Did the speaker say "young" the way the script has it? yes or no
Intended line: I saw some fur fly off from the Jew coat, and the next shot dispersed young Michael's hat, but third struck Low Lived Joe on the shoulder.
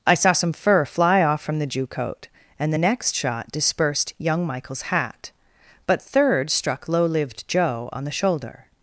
yes